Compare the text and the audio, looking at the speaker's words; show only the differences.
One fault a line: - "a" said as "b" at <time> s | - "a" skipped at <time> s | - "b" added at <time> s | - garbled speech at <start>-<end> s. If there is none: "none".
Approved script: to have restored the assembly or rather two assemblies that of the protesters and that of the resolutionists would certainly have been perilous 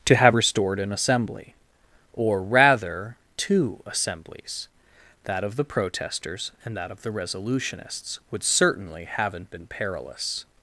- "the" said as "an" at 0.8 s
- "have" said as "haven't" at 9.2 s